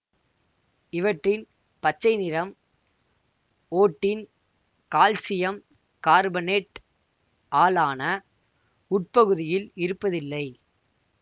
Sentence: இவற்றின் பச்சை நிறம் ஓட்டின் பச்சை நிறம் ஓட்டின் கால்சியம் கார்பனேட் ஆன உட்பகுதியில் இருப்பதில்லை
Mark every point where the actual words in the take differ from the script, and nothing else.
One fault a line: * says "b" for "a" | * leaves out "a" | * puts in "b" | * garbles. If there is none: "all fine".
* leaves out "பச்சை நிறம் ஓட்டின்"
* puts in "ஆல்"